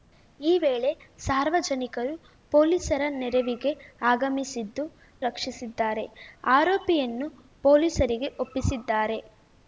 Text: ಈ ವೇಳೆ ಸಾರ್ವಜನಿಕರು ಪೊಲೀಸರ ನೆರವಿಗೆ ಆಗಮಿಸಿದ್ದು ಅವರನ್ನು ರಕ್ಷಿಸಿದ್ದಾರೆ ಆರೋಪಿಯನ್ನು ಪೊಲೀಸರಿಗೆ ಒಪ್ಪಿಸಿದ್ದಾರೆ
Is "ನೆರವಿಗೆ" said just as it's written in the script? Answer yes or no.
yes